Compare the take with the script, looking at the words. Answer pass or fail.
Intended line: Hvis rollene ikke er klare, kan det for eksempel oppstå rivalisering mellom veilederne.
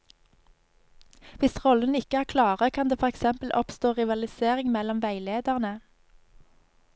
pass